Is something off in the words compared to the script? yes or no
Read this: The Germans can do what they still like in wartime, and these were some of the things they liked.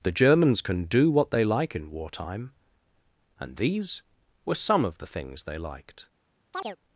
yes